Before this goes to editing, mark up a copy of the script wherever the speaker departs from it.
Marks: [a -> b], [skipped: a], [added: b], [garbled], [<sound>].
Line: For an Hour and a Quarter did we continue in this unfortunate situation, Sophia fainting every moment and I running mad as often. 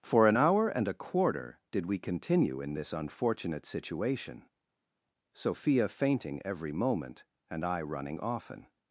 For an Hour and a Quarter did we continue in this unfortunate situation, Sophia fainting every moment and I running [skipped: mad as] often.